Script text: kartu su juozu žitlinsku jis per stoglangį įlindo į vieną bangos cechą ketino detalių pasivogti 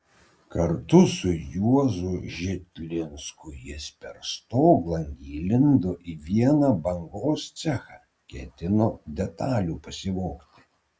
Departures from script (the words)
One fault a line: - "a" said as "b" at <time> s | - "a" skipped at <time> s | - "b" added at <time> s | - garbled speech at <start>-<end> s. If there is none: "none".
none